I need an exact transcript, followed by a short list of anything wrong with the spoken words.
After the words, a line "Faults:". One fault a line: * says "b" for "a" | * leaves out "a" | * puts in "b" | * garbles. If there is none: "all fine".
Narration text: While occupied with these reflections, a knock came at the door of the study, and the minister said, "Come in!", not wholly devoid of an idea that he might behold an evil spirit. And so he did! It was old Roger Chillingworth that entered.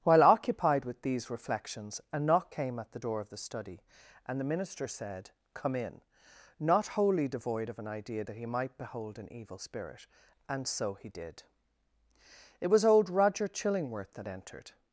While occupied with these reflections, a knock came at the door of the study, and the minister said, "Come in!", not wholly devoid of an idea that he might behold an evil spirit. And so he did! It was old Roger Chillingworth that entered.
Faults:
all fine